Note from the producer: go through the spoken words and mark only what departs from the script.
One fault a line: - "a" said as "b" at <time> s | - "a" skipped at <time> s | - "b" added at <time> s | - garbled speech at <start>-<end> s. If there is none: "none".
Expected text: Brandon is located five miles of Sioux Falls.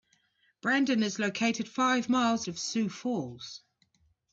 none